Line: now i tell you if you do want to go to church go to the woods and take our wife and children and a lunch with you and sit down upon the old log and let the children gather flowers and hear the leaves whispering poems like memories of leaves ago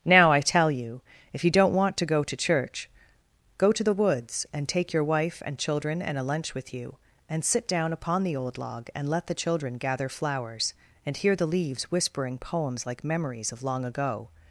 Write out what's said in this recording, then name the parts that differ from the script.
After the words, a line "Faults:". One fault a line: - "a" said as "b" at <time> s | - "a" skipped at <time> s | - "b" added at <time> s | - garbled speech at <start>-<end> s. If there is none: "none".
now i tell you if you don't want to go to church go to the woods and take your wife and children and a lunch with you and sit down upon the old log and let the children gather flowers and hear the leaves whispering poems like memories of long ago
Faults:
- "do" said as "don't" at 1.5 s
- "our" said as "your" at 4.9 s
- "leaves" said as "long" at 13.6 s